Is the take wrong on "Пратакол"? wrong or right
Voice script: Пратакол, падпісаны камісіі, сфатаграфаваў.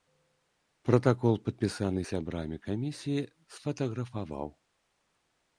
right